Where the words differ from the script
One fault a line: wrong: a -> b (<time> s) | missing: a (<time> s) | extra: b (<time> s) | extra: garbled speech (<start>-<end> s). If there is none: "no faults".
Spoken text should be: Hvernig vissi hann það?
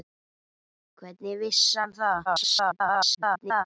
extra: garbled speech (2.3-3.6 s)